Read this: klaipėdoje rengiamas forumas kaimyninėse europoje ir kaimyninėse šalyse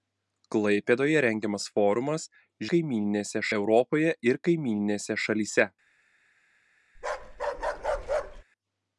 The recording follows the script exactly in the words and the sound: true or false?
false